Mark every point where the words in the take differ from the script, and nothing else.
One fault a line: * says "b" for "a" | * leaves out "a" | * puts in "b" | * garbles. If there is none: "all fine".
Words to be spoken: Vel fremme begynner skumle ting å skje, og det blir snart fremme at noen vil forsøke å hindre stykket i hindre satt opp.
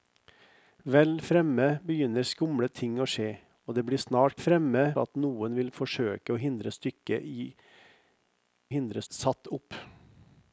all fine